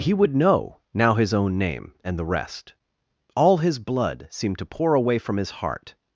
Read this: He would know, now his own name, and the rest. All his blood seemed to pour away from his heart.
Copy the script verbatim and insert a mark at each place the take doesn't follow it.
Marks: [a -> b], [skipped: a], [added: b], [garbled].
He would know, now his own name, and the rest. All his blood seemed to pour away from his heart.